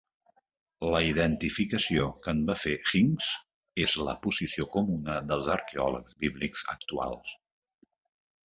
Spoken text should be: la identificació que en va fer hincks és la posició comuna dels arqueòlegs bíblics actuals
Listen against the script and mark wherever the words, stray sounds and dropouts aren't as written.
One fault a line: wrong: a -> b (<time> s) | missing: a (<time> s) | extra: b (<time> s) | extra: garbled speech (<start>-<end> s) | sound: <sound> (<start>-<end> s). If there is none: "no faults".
no faults